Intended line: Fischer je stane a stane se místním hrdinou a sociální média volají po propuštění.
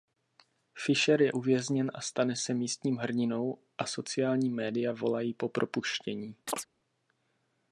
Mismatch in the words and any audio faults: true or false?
true